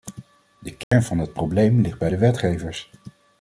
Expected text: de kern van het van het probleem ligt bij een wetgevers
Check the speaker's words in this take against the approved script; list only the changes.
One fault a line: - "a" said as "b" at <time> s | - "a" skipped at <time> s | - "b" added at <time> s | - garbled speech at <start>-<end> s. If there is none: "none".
- "van het" skipped at 1.3 s
- "een" said as "de" at 2.1 s